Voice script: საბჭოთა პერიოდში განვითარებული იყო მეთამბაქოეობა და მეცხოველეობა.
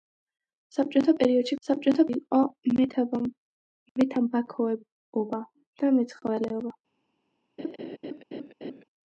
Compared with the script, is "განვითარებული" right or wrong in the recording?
wrong